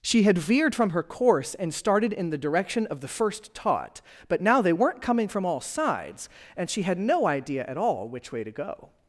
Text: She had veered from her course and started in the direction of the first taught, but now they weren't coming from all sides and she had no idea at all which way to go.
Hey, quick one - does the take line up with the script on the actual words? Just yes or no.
yes